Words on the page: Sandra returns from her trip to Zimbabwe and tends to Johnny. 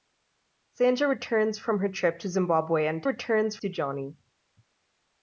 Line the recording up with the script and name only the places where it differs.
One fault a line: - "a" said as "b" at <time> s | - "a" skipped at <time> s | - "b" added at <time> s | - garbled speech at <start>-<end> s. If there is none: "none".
- "tends" said as "returns" at 3.0 s